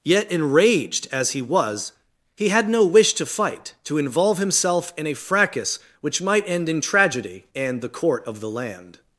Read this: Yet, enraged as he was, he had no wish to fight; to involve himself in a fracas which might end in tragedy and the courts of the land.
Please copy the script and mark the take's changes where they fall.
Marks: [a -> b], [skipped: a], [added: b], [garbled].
Yet, enraged as he was, he had no wish to fight; to involve himself in a fracas which might end in tragedy and the [courts -> court] of the land.